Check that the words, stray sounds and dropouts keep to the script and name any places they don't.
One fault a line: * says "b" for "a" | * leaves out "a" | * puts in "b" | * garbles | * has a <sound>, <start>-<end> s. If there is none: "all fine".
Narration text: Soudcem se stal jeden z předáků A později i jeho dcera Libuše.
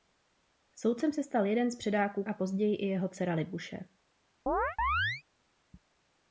* has a chirp, 4.5-5.2 s